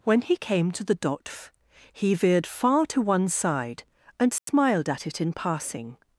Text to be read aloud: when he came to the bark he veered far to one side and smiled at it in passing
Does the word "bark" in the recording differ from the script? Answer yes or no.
yes